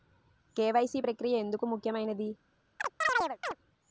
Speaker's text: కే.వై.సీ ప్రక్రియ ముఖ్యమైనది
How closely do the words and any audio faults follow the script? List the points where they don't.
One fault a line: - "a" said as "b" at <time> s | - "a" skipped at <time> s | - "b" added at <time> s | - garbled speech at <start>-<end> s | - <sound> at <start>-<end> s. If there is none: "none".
- "ఎందుకు" added at 1.4 s
- chirp at 2.8-3.6 s